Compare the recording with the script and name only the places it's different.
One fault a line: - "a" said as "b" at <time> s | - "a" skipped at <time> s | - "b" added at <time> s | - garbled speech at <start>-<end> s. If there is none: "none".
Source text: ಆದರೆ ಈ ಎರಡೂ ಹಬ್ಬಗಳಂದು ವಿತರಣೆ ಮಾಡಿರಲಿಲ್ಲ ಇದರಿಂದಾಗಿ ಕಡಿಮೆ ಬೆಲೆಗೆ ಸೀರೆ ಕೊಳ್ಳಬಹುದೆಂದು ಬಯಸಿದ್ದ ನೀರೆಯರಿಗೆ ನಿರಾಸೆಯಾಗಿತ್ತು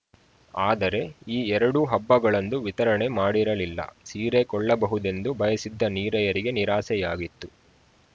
- "ಇದರಿಂದಾಗಿ ಕಡಿಮೆ ಬೆಲೆಗೆ" skipped at 3.8 s